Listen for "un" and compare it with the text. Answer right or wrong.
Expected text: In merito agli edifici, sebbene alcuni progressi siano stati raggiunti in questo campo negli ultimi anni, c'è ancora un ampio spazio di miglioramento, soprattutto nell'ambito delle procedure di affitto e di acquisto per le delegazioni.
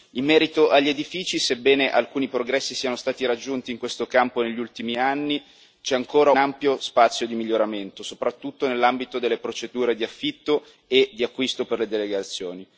wrong